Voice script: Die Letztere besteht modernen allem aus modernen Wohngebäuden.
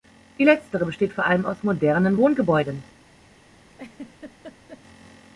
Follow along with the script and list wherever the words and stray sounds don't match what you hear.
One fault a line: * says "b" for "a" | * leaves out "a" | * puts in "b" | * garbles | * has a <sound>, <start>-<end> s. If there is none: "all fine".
* says "vor" for "modernen"
* has a laugh, 3.7-4.8 s